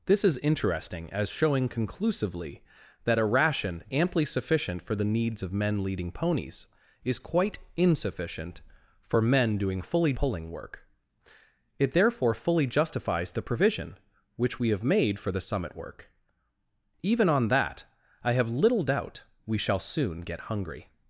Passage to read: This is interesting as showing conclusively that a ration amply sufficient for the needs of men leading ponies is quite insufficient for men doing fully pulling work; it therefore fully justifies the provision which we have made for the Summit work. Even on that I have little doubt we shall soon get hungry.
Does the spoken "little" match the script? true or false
true